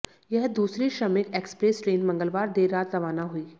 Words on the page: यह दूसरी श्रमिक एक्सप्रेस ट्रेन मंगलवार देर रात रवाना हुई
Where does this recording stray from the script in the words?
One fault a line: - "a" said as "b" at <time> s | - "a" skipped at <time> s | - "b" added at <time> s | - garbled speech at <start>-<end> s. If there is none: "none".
none